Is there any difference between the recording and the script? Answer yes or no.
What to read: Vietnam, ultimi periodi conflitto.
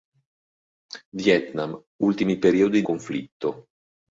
no